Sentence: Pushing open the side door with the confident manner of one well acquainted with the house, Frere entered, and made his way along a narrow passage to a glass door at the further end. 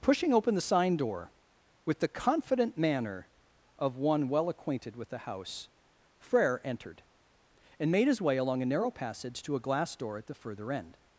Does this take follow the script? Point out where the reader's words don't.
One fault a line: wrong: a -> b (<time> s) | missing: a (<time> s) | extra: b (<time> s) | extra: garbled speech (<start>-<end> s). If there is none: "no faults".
wrong: side -> sign (0.6 s)